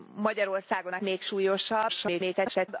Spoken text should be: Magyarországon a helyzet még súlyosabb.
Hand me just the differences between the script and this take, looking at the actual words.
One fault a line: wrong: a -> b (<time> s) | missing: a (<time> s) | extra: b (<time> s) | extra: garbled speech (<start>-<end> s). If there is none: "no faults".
missing: helyzet (1.0 s)
extra: garbled speech (1.9-2.7 s)